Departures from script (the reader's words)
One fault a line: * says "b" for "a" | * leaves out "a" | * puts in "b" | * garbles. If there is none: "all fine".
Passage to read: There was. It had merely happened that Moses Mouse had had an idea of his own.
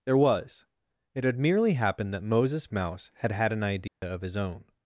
all fine